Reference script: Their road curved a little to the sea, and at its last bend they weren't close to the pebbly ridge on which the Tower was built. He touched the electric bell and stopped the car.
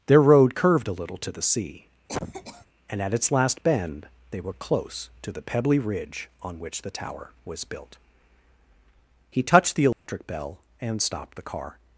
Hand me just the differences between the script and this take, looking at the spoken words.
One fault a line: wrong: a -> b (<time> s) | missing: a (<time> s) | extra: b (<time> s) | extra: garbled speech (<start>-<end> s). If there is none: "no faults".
wrong: weren't -> were (4.4 s)